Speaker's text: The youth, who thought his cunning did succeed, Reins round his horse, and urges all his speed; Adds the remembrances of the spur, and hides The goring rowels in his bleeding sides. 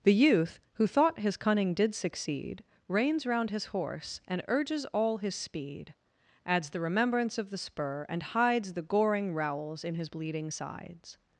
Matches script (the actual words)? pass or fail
fail